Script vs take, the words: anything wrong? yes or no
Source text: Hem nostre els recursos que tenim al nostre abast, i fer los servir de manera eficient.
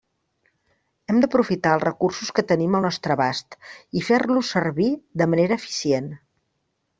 yes